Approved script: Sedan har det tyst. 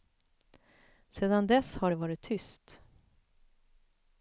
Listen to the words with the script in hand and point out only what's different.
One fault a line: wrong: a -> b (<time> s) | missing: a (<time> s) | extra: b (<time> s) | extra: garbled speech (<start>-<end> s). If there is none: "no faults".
extra: dess (1.5 s)
extra: varit (1.9 s)